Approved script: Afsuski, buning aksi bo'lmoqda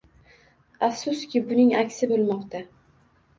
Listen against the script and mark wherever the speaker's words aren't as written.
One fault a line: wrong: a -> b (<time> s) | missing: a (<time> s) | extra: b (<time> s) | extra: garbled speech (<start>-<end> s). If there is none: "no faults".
no faults